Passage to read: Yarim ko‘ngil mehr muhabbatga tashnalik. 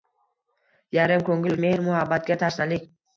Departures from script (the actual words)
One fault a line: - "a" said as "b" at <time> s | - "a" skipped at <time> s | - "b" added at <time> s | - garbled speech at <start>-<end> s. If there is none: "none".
none